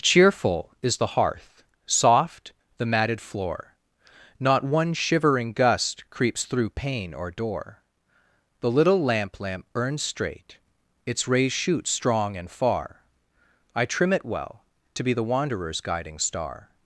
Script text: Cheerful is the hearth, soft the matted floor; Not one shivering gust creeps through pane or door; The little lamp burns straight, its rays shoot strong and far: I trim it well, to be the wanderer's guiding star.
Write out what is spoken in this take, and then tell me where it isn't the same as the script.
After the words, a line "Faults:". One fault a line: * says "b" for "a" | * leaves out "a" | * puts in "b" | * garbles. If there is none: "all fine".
Cheerful is the hearth, soft the matted floor; Not one shivering gust creeps through pane or door; The little lamp lamp burns straight, its rays shoot strong and far: I trim it well, to be the wanderer's guiding star.
Faults:
* puts in "lamp"